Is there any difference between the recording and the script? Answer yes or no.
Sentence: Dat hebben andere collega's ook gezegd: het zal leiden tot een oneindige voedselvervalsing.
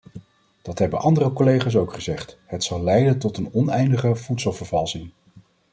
no